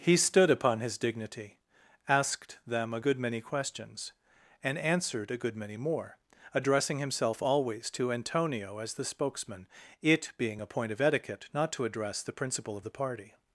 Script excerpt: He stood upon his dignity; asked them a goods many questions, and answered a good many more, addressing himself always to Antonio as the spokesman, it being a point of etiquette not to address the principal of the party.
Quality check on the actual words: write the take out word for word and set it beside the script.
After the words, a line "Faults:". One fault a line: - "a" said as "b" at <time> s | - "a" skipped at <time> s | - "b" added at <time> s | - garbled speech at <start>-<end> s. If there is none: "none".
He stood upon his dignity; asked them a good many questions, and answered a good many more, addressing himself always to Antonio as the spokesman, it being a point of etiquette not to address the principal of the party.
Faults:
- "goods" said as "good" at 3.0 s